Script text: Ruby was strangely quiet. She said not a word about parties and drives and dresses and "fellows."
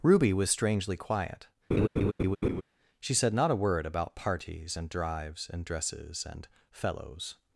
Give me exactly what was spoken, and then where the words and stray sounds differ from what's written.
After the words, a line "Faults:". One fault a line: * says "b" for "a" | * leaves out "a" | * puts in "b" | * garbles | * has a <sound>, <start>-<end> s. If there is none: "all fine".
Ruby was strangely quiet. She said not a word about parties and drives and dresses and "fellows."
Faults:
* has a laugh, 1.7-2.6 s